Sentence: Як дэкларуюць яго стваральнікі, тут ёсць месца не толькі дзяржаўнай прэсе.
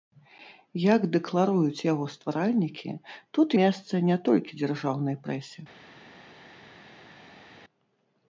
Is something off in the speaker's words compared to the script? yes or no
yes